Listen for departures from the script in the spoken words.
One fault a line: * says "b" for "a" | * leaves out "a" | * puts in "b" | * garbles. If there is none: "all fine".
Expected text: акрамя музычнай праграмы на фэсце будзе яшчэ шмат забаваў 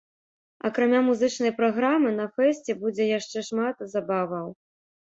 all fine